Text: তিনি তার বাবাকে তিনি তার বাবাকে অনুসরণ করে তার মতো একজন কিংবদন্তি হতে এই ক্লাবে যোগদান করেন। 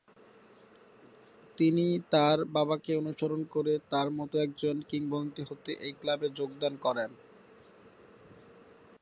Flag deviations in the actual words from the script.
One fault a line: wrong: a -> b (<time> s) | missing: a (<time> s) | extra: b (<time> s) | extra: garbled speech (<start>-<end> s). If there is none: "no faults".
missing: তিনি তার বাবাকে (2.9 s)